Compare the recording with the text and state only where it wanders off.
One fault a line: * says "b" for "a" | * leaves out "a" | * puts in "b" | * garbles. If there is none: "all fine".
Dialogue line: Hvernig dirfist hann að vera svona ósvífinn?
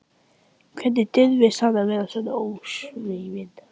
all fine